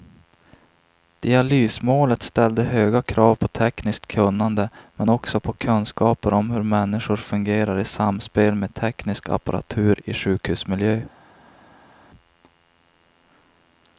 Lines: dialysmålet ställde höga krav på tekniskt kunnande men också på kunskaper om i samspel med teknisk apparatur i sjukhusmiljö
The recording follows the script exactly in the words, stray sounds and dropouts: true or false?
false